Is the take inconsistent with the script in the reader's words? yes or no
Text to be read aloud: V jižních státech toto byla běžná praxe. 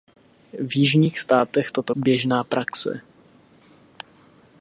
yes